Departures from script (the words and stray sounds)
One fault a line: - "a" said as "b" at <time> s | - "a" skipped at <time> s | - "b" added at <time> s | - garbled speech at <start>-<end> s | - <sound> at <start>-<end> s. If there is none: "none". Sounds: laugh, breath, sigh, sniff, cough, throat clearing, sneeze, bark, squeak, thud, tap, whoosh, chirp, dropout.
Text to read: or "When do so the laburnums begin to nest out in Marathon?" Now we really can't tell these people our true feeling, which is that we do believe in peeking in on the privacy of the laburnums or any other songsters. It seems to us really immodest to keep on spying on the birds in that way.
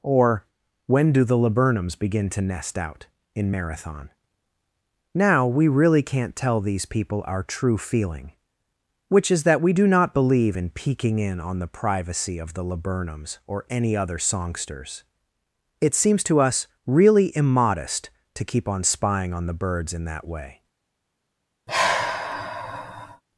- "so" skipped at 1.2 s
- "not" added at 9.9 s
- sigh at 21.7-23.2 s